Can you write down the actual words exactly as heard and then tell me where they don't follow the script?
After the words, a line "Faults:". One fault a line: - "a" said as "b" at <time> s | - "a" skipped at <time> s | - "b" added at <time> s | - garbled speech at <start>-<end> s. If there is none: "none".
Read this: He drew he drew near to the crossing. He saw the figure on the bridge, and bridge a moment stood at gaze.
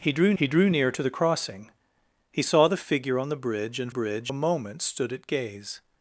He drew he drew near to the crossing. He saw the figure on the bridge, and bridge a moment stood at gaze.
Faults:
none